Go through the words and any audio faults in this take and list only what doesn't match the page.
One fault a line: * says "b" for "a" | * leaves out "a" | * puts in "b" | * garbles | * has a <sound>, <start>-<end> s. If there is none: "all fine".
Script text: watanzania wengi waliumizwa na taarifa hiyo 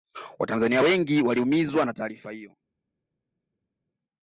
all fine